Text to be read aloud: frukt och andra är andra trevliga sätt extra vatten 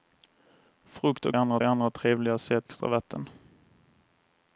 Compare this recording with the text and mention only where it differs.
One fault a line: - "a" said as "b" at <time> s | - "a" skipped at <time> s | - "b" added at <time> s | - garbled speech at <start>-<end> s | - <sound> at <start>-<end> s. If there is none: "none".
none